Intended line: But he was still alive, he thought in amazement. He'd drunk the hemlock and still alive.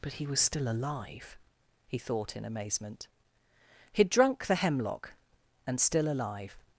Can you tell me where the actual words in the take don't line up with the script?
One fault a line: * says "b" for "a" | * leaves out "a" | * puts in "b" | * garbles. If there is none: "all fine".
all fine